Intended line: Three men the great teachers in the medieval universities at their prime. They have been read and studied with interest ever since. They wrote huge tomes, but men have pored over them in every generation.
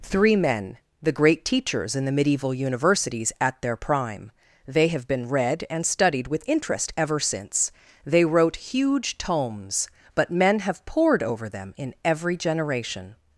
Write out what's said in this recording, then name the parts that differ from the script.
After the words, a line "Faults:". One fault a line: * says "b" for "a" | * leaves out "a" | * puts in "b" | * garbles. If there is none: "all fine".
Three men the great teachers in the medieval universities at their prime. They have been read and studied with interest ever since. They wrote huge tomes, but men have pored over them in every generation.
Faults:
all fine